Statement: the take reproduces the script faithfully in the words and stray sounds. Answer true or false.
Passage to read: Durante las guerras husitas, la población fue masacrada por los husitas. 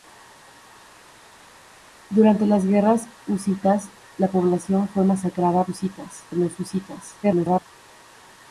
false